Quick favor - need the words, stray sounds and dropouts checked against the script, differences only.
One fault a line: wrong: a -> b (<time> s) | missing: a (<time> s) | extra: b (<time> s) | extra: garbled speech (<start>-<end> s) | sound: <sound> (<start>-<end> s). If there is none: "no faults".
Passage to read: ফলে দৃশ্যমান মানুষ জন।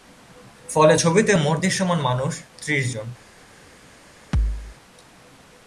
extra: ছবিতে মোট (0.9 s)
extra: ত্রিশ (2.6 s)
sound: thud (4.3-4.8 s)